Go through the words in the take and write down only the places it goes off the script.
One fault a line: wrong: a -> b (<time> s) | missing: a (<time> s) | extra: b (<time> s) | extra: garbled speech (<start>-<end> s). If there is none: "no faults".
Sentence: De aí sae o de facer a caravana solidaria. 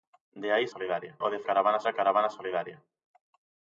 wrong: sae -> solidaria (0.7 s)
wrong: facer -> caravana (1.5 s)